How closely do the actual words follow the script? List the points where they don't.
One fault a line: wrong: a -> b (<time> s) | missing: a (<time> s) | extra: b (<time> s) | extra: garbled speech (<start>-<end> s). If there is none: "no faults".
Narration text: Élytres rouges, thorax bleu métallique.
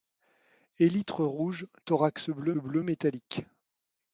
extra: bleu (2.6 s)